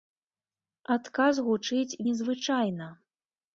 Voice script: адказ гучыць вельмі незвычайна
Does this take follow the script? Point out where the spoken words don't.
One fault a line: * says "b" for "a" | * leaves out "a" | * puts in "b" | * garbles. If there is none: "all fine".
* leaves out "вельмі"